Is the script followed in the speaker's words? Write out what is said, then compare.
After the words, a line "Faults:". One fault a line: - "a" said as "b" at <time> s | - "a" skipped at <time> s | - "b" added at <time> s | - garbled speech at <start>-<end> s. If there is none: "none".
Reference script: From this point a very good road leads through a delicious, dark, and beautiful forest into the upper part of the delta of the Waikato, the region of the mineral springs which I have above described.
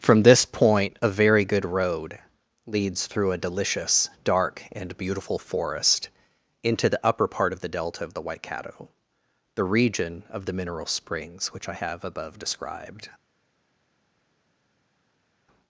From this point a very good road leads through a delicious, dark, and beautiful forest into the upper part of the delta of the Waikato, the region of the mineral springs which I have above described.
Faults:
none